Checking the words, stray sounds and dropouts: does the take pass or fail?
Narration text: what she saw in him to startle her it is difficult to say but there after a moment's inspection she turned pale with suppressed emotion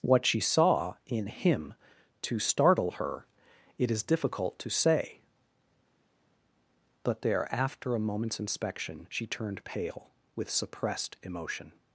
pass